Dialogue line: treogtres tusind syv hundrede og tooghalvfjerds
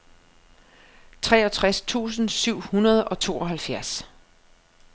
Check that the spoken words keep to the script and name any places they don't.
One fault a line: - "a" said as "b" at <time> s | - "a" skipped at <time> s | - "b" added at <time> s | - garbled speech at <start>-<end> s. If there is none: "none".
none